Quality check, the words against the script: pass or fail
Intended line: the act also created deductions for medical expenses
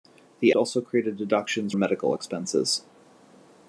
fail